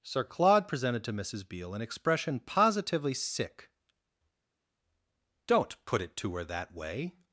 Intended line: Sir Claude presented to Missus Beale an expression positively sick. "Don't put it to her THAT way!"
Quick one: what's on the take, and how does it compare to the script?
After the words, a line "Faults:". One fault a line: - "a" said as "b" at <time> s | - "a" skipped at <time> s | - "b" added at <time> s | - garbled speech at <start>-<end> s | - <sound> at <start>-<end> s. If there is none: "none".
Sir Claude presented to Missus Beale an expression positively sick. "Don't put it to her THAT way!"
Faults:
none